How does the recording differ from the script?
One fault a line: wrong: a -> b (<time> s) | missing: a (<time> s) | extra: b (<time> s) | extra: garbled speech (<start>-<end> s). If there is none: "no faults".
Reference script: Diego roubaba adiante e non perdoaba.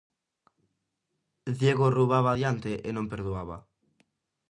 no faults